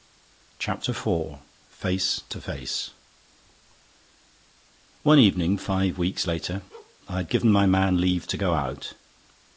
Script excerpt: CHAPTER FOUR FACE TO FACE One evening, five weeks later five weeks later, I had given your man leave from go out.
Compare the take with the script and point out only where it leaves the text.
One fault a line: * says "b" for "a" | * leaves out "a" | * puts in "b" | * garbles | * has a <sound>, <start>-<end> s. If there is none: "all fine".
* leaves out "five weeks later"
* has a bark, 6.7-7.0 s
* says "my" for "your"
* says "to" for "from"